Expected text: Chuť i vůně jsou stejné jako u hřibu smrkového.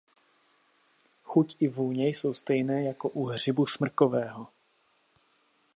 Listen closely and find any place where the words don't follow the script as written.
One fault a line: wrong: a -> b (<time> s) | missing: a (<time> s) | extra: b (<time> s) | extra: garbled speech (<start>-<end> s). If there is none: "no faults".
no faults